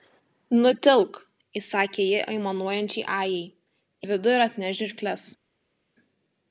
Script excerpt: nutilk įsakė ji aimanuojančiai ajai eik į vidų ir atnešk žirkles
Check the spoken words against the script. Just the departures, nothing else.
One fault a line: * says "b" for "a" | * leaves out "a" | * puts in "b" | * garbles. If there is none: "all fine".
* leaves out "eik"